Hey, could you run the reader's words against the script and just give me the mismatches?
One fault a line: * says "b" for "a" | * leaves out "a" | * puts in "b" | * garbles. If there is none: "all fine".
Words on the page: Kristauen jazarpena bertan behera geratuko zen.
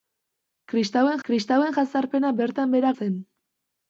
* puts in "kristauen"
* leaves out "geratuko"